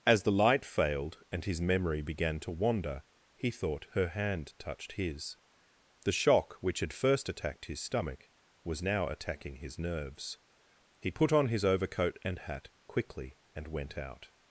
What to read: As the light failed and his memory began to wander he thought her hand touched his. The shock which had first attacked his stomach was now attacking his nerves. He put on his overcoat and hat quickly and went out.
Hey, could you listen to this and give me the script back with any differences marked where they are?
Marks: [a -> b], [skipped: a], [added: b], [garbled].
As the light failed and his memory began to wander he thought her hand touched his. The shock which had first attacked his stomach was now attacking his nerves. He put on his overcoat and hat quickly and went out.